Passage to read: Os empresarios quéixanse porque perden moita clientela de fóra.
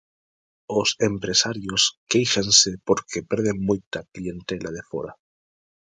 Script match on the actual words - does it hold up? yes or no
yes